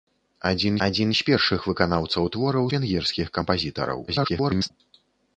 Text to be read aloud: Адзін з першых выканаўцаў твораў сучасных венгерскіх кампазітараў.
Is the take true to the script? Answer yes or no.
no